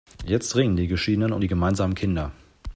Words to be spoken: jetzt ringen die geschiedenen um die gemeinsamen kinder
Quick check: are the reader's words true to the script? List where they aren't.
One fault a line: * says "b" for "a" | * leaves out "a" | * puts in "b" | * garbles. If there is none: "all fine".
all fine